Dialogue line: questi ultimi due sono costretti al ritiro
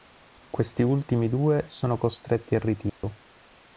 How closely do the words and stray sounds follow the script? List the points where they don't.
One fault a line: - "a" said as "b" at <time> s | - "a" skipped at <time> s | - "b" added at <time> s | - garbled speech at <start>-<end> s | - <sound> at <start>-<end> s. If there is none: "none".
- dropout at 2.9-3.0 s